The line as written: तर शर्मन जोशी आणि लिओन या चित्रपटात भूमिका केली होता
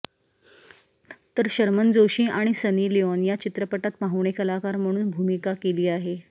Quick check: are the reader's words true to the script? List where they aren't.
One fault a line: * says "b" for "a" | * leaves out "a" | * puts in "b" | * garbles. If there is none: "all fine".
* puts in "सनी"
* puts in "पाहुणे कलाकार म्हणून"
* says "आहे" for "होता"